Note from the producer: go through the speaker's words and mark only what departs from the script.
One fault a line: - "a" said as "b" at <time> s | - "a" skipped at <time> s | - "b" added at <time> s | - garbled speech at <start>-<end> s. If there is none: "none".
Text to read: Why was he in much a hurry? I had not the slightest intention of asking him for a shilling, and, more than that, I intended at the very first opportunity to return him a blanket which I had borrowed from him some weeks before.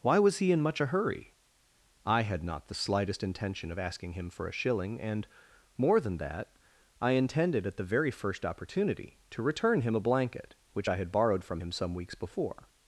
none